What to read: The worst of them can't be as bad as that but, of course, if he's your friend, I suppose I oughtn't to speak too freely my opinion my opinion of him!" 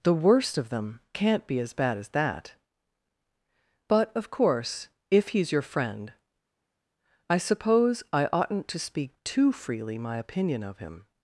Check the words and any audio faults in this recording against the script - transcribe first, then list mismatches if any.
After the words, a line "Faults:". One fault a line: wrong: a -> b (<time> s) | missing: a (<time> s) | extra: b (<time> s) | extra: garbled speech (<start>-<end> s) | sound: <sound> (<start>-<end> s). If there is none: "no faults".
The worst of them can't be as bad as that but, of course, if he's your friend, I suppose I oughtn't to speak too freely my opinion of him!"
Faults:
missing: my opinion (10.6 s)